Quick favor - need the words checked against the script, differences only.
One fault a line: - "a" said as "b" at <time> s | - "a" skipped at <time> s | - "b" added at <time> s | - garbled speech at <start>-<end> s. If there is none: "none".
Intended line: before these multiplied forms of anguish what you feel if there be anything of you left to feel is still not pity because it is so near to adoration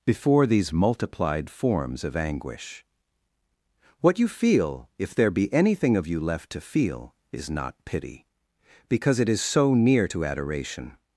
- "still" skipped at 7.5 s